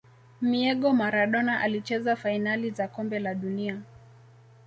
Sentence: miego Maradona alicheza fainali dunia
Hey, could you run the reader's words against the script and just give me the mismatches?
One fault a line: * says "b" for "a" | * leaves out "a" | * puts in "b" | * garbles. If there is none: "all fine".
* puts in "za kombe la"